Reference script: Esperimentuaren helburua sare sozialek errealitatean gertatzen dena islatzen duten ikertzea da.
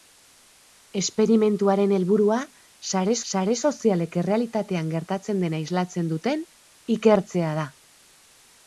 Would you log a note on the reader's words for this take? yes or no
yes